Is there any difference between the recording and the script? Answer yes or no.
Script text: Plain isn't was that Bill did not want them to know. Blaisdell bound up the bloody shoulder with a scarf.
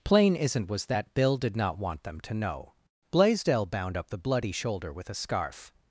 no